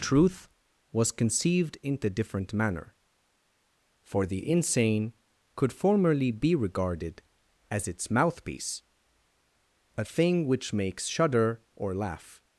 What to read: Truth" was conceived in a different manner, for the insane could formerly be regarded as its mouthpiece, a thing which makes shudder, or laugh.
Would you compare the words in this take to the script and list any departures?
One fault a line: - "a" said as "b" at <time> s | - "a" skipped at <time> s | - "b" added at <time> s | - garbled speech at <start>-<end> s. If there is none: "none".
none